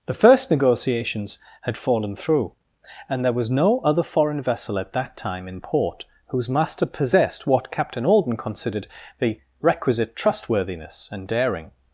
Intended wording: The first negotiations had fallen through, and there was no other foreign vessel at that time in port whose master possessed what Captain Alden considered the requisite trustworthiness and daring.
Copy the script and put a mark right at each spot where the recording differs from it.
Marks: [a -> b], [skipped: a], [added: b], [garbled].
The first negotiations had fallen through, and there was no other foreign vessel at that time in port whose master possessed what Captain Alden considered the requisite trustworthiness and daring.